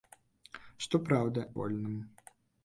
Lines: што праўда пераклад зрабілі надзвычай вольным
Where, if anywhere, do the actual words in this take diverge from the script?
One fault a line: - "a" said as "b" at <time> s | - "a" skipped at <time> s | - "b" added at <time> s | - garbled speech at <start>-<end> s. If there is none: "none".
- "пераклад зрабілі надзвычай" skipped at 1.4 s